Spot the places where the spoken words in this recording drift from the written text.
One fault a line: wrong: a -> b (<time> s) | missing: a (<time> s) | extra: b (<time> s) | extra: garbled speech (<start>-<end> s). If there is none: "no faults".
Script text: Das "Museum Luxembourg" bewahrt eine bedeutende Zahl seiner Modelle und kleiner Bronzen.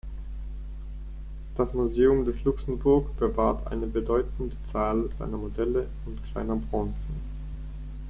extra: des (2.2 s)